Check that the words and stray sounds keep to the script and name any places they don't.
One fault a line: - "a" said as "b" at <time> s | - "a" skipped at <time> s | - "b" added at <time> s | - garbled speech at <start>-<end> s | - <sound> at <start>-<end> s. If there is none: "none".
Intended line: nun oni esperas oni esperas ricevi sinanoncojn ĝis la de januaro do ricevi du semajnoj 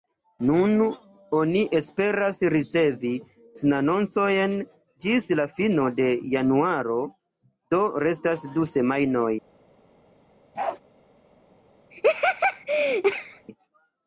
- "oni esperas" skipped at 2.4 s
- "fino" added at 5.6 s
- "ricevi" said as "restas" at 8.1 s
- bark at 10.6-10.8 s
- laugh at 11.9-13.5 s